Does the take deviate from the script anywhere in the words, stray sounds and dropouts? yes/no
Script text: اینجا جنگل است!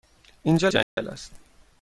yes